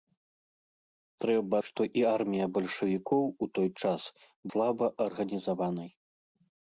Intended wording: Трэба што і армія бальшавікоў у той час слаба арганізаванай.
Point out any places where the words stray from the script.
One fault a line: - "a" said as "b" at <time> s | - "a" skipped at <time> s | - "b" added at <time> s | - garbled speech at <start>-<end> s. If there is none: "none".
none